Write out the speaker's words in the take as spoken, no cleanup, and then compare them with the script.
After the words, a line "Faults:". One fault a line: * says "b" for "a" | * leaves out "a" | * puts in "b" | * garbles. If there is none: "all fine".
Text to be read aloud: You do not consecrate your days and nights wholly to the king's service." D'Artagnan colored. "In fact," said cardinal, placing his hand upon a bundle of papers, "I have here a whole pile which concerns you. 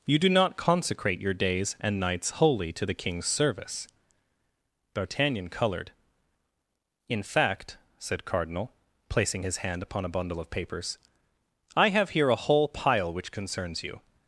You do not consecrate your days and nights wholly to the king's service." D'Artagnan colored. "In fact," said cardinal, placing his hand upon a bundle of papers, "I have here a whole pile which concerns you.
Faults:
all fine